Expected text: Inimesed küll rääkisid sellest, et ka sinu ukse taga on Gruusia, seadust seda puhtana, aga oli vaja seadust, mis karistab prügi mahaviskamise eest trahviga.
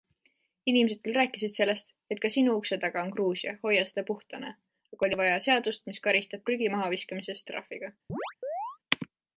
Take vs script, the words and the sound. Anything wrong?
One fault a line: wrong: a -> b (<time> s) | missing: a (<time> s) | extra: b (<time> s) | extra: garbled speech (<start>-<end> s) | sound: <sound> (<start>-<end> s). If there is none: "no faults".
wrong: seadust -> hoia (3.7 s)
sound: chirp (8.1-8.8 s)